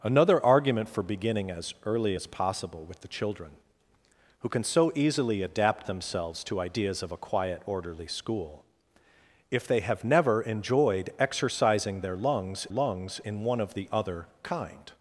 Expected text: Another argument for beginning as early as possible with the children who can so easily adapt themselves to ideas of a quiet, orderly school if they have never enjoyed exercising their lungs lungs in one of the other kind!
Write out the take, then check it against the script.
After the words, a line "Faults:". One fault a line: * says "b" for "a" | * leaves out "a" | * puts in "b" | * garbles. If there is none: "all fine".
Another argument for beginning as early as possible with the children who can so easily adapt themselves to ideas of a quiet, orderly school if they have never enjoyed exercising their lungs lungs in one of the other kind!
Faults:
all fine